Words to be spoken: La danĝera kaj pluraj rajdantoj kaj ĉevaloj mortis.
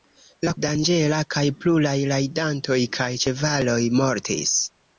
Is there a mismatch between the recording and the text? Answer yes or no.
no